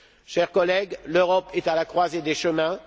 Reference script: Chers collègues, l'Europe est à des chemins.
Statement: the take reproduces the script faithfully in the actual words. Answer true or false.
false